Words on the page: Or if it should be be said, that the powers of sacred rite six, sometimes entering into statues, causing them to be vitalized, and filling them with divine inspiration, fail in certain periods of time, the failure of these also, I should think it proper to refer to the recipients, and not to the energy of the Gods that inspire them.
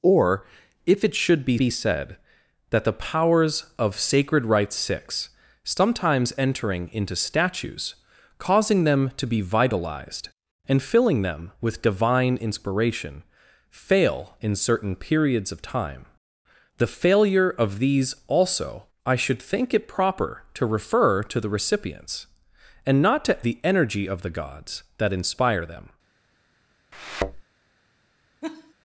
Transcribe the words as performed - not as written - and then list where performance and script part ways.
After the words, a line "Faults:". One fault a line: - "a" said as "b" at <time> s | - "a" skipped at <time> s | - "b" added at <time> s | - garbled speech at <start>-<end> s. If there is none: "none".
Or if it should be be said, that the powers of sacred rite six, sometimes entering into statues, causing them to be vitalized, and filling them with divine inspiration, fail in certain periods of time, the failure of these also, I should think it proper to refer to the recipients, and not to the energy of the Gods that inspire them.
Faults:
none